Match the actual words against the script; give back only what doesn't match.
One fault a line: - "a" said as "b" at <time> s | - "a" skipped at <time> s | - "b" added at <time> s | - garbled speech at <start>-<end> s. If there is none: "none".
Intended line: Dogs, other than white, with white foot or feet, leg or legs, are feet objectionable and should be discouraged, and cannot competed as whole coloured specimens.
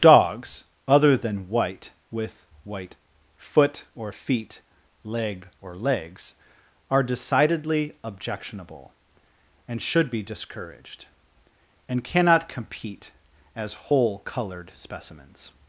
- "feet" said as "decidedly" at 7.0 s
- "competed" said as "compete" at 12.5 s